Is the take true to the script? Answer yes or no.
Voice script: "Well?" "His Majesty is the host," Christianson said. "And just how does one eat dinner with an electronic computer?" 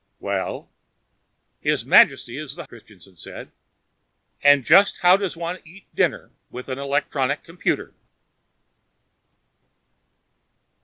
no